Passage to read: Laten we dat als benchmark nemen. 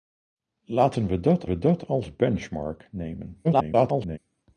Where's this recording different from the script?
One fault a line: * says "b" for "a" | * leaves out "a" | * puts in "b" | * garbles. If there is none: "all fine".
* puts in "we dat"
* garbles